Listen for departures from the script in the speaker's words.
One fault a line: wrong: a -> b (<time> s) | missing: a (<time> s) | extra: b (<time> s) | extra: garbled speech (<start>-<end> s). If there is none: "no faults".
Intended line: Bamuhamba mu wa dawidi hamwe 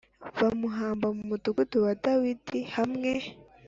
extra: mudugudu (1.3 s)